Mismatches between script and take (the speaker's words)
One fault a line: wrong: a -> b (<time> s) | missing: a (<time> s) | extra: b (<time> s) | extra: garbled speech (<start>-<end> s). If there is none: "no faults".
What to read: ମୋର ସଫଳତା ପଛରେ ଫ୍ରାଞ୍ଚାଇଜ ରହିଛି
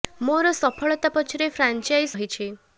no faults